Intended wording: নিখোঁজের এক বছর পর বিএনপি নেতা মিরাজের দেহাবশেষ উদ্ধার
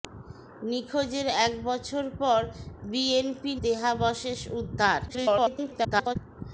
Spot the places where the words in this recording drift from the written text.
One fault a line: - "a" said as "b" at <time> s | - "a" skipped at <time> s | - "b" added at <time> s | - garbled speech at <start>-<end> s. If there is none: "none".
- "নেতা মিরাজের" skipped at 3.5 s
- garbled speech at 5.1-6.2 s